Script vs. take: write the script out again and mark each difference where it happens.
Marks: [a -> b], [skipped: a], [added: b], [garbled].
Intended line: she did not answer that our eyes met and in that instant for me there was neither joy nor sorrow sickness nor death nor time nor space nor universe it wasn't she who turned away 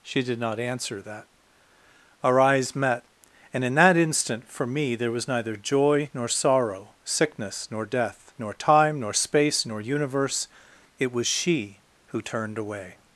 she did not answer that our eyes met and in that instant for me there was neither joy nor sorrow sickness nor death nor time nor space nor universe it [wasn't -> was] she who turned away